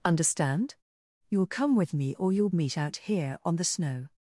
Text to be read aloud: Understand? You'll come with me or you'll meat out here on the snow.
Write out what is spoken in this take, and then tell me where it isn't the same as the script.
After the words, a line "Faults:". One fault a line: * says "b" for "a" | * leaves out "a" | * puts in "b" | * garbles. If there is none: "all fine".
Understand? You'll come with me or you'll meat out here on the snow.
Faults:
all fine